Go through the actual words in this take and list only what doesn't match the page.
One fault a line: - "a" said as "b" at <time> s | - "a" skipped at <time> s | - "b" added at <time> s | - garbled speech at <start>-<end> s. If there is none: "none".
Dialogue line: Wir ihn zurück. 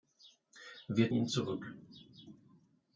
none